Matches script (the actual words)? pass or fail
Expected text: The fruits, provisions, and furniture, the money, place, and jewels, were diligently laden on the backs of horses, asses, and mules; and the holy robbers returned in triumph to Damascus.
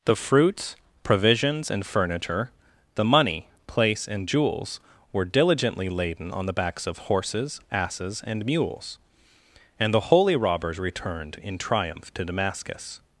pass